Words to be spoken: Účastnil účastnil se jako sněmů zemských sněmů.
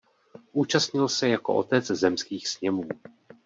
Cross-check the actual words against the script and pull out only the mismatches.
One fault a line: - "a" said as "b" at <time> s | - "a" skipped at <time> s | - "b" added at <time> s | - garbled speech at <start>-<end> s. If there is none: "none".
- "účastnil" skipped at 1.1 s
- "sněmů" said as "otec" at 1.6 s